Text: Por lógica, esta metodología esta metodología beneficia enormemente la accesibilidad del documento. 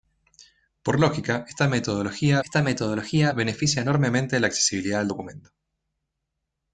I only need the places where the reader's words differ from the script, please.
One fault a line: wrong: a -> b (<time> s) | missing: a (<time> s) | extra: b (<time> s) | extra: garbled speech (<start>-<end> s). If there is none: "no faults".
no faults